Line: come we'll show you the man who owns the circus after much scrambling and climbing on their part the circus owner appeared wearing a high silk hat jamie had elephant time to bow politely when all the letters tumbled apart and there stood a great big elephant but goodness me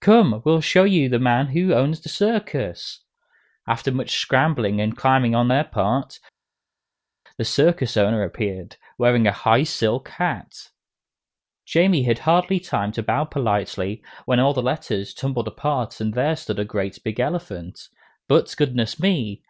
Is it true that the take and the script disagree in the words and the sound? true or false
true